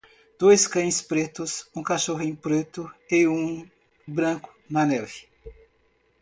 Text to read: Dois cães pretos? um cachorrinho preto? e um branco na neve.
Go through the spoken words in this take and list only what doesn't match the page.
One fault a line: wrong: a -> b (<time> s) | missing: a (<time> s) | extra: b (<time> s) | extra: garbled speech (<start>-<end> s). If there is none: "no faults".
no faults